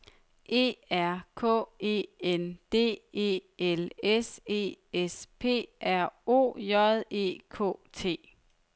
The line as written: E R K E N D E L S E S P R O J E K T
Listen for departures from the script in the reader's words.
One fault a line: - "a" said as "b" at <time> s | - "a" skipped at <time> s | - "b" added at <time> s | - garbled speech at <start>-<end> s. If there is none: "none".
none